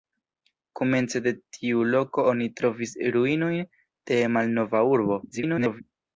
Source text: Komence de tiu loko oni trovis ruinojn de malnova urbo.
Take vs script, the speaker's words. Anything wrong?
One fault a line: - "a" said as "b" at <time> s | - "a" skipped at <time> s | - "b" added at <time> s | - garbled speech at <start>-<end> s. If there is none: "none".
- garbled speech at 5.3-5.8 s